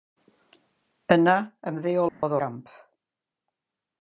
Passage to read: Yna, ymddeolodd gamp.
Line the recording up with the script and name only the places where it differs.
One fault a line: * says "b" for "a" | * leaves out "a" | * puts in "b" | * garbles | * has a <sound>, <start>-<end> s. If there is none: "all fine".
* has a dropout, 2.1-2.2 s